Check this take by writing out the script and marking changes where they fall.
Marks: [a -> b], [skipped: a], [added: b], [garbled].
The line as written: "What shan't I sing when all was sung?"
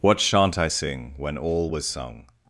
"What shan't I sing when all was sung?"